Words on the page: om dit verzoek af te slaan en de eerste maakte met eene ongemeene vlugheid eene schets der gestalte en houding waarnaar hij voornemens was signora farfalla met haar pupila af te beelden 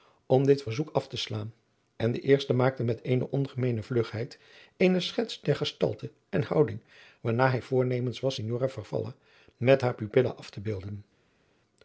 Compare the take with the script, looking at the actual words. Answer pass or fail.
pass